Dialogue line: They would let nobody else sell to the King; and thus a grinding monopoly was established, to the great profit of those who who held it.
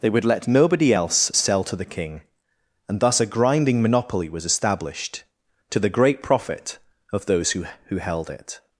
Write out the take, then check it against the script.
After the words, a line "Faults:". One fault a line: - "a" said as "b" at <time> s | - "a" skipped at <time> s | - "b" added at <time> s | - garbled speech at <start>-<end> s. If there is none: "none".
They would let nobody else sell to the King; and thus a grinding monopoly was established, to the great profit of those who who held it.
Faults:
none